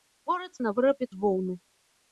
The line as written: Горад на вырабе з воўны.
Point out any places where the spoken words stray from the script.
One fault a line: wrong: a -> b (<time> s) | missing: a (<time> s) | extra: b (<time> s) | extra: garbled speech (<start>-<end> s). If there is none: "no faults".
no faults